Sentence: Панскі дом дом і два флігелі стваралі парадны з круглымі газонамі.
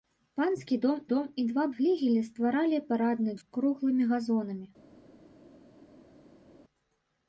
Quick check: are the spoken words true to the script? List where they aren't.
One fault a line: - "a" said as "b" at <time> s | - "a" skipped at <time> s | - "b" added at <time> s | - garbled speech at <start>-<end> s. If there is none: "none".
none